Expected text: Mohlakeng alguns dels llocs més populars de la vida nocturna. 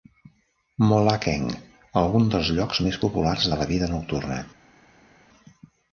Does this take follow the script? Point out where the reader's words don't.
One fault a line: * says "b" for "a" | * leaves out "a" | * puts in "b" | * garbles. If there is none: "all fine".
all fine